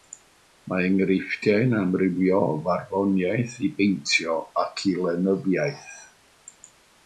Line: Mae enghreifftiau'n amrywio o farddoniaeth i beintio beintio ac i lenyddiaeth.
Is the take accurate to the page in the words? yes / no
no